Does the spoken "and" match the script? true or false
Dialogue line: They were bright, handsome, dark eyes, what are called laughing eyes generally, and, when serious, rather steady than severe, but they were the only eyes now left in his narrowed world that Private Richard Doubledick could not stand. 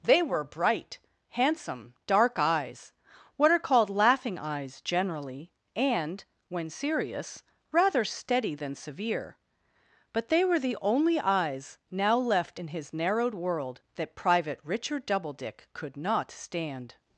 true